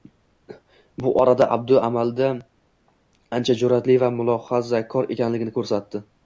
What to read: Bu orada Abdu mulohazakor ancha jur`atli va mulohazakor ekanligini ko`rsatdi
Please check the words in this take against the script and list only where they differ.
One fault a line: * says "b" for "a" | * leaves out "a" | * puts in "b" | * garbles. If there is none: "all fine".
* says "amalda" for "mulohazakor"